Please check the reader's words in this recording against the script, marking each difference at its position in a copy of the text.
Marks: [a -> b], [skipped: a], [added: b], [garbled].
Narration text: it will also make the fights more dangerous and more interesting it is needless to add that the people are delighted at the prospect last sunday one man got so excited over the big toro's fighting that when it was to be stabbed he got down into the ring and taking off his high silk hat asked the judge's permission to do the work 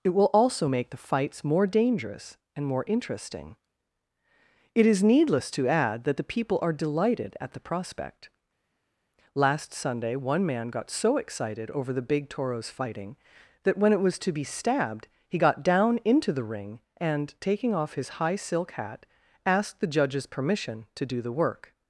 it will also make the fights more dangerous and more interesting it is needless to add that the people are delighted at the prospect last sunday one man got so excited over the big toro's fighting that when it was to be stabbed he got down into the ring and taking off his high silk hat asked the judge's permission to do the work